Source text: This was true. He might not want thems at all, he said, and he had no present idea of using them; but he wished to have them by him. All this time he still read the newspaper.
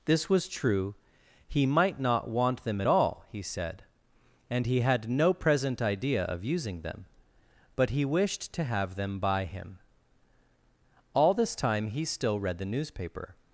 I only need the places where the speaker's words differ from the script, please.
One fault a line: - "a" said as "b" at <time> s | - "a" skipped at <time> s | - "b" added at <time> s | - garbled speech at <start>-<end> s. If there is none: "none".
- "thems" said as "them" at 2.6 s